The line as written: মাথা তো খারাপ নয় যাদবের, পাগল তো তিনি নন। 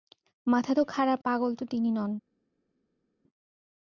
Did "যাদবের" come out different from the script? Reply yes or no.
yes